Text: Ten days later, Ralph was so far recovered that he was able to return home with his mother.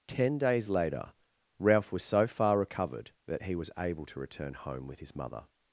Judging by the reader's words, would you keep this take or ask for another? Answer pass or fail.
pass